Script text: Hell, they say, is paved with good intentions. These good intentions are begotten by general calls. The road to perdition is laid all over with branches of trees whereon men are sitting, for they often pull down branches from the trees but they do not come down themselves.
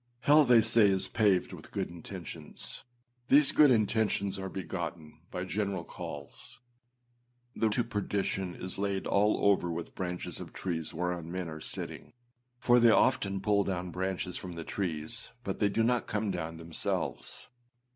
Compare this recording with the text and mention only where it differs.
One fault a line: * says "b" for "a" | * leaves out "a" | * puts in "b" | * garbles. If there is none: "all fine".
* leaves out "road"